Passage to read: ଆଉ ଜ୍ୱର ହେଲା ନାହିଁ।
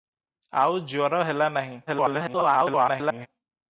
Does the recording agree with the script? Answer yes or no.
no